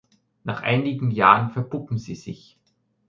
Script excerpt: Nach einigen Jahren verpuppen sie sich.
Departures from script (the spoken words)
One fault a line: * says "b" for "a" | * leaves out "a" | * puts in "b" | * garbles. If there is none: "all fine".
all fine